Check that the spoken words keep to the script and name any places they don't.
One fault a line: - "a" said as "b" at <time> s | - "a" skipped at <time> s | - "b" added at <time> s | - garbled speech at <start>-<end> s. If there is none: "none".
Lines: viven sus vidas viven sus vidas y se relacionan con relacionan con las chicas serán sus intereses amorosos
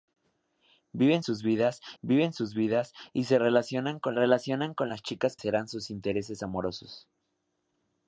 none